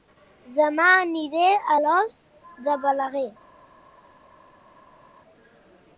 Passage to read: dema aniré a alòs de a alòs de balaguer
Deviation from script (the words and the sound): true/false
true